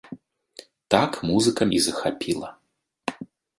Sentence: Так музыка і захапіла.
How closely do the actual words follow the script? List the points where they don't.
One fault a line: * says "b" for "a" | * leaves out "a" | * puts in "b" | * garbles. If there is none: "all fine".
all fine